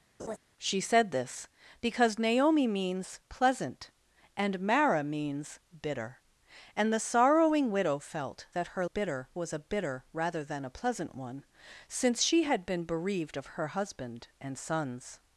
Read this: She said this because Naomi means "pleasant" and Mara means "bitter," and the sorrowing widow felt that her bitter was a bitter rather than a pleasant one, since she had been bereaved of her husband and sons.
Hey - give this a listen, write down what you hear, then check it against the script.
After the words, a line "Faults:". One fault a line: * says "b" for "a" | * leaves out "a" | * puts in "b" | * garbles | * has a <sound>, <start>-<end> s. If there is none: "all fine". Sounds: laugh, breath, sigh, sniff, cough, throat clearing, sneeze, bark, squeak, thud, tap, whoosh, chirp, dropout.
She said this because Naomi means "pleasant" and Mara means "bitter," and the sorrowing widow felt that her bitter was a bitter rather than a pleasant one, since she had been bereaved of her husband and sons.
Faults:
* has a laugh, 0.2-0.4 s